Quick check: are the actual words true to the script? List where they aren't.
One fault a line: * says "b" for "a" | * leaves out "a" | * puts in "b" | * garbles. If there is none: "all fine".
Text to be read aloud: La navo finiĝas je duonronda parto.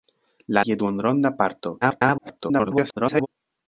* leaves out "navo finiĝas"
* garbles